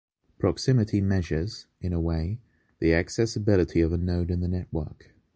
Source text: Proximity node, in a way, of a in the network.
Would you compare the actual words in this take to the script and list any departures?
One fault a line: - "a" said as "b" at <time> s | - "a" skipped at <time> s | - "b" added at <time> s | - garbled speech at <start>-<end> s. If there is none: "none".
- "node" said as "measures" at 1.0 s
- "the accessibility" added at 2.8 s
- "node" added at 4.0 s